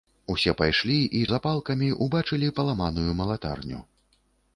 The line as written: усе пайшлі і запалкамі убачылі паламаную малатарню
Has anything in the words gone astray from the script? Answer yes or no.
no